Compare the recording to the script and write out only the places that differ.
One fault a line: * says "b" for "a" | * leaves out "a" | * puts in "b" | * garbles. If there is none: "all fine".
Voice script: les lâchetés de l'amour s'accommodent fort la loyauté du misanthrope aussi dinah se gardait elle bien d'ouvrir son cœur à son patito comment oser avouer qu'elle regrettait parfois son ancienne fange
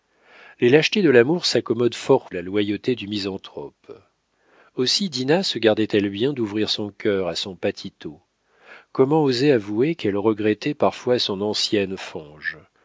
all fine